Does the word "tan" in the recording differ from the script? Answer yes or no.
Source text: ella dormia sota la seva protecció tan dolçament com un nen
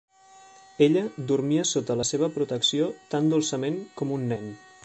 no